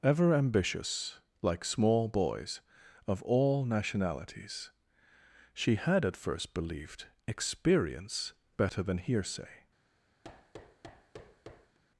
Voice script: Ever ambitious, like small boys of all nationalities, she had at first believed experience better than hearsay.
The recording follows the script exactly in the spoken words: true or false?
true